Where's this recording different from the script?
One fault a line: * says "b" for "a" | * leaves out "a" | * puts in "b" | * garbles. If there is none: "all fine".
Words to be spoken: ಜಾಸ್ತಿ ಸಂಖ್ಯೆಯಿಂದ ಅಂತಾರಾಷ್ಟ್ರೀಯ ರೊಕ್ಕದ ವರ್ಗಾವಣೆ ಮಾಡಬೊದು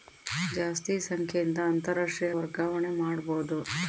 * leaves out "ರೊಕ್ಕದ"